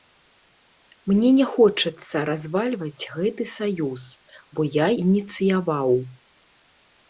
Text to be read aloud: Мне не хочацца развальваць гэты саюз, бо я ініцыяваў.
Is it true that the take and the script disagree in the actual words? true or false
false